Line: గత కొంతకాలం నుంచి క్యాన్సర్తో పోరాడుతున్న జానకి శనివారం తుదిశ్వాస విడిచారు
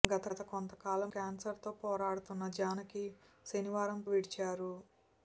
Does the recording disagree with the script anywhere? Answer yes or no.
yes